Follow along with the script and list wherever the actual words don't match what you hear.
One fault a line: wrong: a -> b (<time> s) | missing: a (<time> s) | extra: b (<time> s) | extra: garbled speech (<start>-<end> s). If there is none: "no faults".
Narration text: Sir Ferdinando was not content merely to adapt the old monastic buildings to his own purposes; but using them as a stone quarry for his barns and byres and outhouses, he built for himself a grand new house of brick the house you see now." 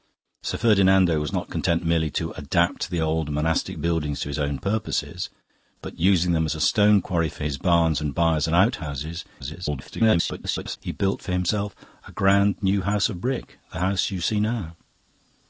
extra: garbled speech (9.4-10.8 s)